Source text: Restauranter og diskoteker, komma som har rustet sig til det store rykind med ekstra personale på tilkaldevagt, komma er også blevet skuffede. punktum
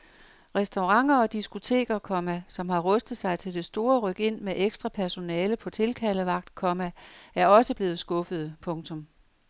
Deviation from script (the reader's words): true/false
false